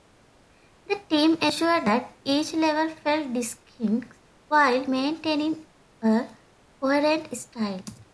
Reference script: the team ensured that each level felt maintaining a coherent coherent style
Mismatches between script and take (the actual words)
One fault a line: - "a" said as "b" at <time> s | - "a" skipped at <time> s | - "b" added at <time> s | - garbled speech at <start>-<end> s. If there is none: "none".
- "distinct while" added at 3.3 s
- "coherent" skipped at 7.4 s